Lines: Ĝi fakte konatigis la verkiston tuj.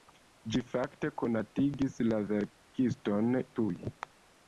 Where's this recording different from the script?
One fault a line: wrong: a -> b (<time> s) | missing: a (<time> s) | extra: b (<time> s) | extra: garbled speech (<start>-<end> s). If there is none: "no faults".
no faults